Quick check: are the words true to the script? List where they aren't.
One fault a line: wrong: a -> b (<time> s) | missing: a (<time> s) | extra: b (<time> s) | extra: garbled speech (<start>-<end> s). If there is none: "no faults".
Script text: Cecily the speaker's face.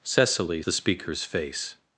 no faults